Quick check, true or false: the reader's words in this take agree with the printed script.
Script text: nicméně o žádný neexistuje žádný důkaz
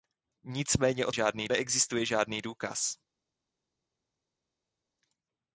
true